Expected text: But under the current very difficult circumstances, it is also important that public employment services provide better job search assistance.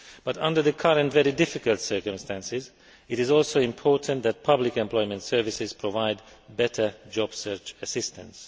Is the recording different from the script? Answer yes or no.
no